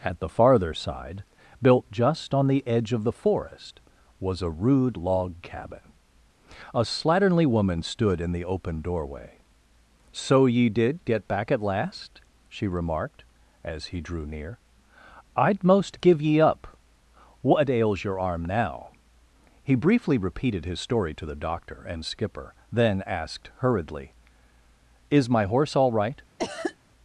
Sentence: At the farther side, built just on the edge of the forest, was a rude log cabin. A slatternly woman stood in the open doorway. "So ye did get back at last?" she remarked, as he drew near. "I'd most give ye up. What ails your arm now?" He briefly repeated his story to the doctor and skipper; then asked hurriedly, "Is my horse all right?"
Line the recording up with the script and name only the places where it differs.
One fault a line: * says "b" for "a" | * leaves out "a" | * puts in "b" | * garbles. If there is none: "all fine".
all fine